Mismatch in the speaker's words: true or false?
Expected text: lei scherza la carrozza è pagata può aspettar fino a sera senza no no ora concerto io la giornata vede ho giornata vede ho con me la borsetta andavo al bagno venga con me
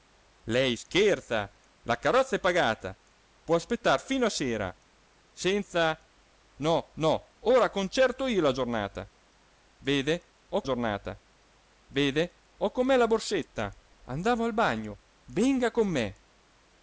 false